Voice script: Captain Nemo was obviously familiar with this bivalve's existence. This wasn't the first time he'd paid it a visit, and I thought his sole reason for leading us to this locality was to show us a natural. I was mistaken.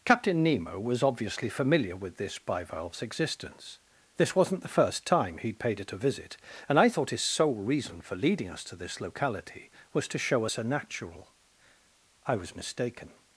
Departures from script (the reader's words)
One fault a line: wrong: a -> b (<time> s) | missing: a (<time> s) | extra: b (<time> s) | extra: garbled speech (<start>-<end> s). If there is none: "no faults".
no faults